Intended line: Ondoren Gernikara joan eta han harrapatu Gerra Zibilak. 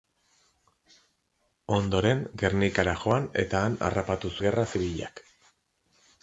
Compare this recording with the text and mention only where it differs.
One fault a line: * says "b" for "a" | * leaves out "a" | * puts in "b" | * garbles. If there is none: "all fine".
all fine